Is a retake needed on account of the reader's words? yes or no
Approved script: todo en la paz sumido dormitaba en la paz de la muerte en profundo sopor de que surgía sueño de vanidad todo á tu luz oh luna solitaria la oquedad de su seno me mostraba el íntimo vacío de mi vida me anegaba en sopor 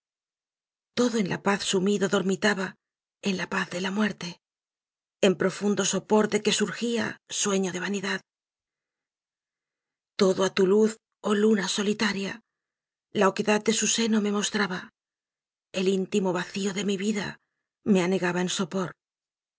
no